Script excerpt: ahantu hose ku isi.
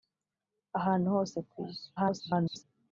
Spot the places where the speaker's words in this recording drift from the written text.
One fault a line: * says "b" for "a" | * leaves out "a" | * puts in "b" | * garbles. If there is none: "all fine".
* garbles